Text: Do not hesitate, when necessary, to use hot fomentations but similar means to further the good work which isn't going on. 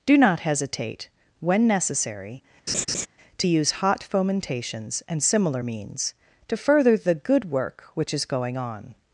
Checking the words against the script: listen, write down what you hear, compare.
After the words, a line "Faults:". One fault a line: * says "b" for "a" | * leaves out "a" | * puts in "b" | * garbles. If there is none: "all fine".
Do not hesitate, when necessary, to use hot fomentations and similar means to further the good work which is going on.
Faults:
* says "and" for "but"
* says "is" for "isn't"